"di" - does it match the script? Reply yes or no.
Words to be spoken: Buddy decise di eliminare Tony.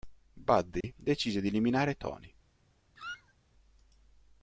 yes